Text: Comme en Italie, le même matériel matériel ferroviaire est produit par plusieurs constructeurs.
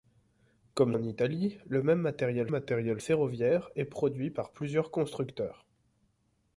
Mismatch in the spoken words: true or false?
false